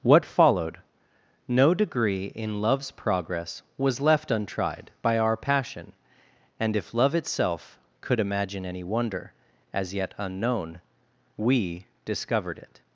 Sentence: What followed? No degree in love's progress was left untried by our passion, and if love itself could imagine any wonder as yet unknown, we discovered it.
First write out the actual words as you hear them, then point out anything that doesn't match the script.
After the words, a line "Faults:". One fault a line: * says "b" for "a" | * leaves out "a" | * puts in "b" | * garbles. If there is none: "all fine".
What followed? No degree in love's progress was left untried by our passion, and if love itself could imagine any wonder as yet unknown, we discovered it.
Faults:
all fine